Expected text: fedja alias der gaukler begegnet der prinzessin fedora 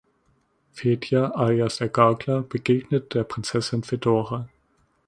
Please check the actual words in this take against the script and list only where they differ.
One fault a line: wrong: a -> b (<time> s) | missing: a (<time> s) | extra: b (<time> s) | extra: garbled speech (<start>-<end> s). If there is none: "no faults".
no faults